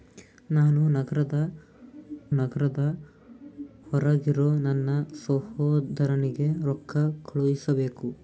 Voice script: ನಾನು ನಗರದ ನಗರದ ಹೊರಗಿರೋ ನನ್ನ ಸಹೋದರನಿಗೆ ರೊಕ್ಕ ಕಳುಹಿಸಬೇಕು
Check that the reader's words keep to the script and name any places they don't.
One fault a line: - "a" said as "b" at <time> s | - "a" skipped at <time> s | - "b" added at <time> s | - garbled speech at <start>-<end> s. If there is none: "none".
none